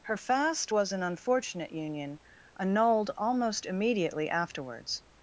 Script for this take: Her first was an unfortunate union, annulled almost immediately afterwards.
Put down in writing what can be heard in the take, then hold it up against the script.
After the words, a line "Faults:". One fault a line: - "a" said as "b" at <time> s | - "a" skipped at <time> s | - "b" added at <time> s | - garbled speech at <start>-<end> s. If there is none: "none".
Her fast was an unfortunate union, annulled almost immediately afterwards.
Faults:
- "first" said as "fast" at 0.2 s